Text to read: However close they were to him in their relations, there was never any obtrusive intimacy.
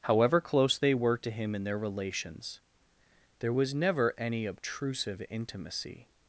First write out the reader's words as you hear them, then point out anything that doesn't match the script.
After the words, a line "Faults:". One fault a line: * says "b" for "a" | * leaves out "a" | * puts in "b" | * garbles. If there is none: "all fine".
However close they were to him in their relations, there was never any obtrusive intimacy.
Faults:
all fine